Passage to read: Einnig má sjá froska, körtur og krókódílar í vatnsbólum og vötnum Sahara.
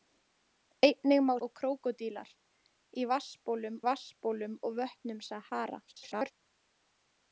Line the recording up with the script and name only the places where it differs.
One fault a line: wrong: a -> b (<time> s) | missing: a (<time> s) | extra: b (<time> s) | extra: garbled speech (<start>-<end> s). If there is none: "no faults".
missing: sjá froska körtur (1.3 s)
extra: vatnsbólum (3.9 s)
extra: garbled speech (5.9-6.3 s)